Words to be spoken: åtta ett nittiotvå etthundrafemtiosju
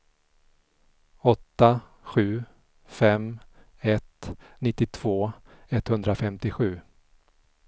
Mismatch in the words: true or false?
true